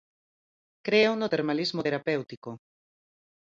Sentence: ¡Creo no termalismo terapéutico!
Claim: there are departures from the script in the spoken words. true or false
false